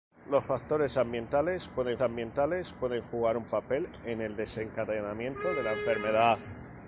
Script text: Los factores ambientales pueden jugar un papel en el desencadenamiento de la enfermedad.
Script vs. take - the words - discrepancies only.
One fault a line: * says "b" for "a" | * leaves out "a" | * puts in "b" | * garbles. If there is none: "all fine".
* puts in "ambientales pueden"